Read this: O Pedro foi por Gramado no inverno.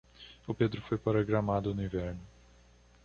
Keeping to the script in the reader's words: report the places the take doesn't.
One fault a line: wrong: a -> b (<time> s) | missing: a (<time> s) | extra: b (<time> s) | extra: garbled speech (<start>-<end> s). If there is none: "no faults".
wrong: por -> para (1.0 s)